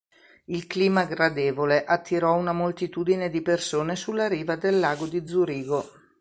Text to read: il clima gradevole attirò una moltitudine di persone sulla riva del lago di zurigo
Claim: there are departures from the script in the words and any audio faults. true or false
false